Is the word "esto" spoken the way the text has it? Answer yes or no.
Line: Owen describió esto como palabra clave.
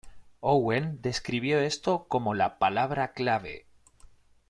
yes